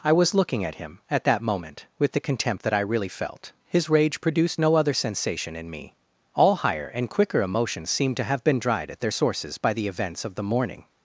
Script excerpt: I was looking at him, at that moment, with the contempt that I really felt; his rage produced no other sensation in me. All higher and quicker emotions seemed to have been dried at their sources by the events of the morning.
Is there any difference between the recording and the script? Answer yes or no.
no